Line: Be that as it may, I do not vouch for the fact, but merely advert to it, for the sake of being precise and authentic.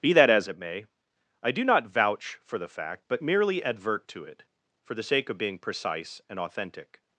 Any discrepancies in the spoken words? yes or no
no